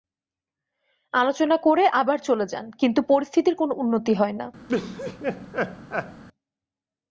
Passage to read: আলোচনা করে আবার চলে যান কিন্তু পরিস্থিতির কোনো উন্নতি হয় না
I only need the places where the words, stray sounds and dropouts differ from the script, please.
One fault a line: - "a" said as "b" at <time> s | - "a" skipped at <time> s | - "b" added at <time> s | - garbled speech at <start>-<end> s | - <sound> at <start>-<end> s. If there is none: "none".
- laugh at 4.7-6.2 s